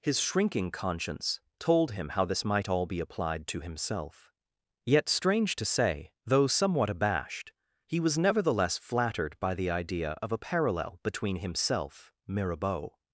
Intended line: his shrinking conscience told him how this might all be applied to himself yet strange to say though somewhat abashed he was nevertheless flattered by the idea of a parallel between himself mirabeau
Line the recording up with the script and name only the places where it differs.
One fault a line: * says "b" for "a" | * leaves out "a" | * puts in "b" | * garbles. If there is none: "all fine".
all fine